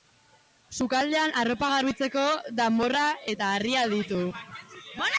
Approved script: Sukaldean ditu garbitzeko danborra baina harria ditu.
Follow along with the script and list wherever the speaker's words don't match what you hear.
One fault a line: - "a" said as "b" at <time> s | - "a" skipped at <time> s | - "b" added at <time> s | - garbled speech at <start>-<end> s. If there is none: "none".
- "ditu" said as "arropa" at 1.4 s
- "baina" said as "eta" at 3.3 s